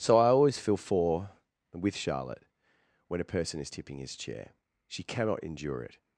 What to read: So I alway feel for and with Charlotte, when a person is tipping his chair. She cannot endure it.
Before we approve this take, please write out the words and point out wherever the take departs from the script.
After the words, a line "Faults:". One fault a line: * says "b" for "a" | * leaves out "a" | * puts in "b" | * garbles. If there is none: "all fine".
So I always feel for and with Charlotte, when a person is tipping his chair. She cannot endure it.
Faults:
* says "always" for "alway"